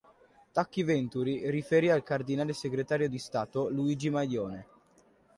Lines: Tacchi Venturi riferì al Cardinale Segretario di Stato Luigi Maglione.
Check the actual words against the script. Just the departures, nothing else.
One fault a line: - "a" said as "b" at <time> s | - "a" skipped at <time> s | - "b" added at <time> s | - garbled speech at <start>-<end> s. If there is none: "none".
none